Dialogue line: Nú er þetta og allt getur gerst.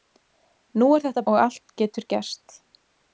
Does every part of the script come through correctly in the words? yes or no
yes